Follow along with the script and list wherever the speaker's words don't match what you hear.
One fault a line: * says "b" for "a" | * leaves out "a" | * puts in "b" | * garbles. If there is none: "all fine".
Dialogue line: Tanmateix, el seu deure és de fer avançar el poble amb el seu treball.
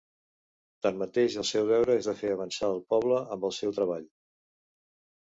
all fine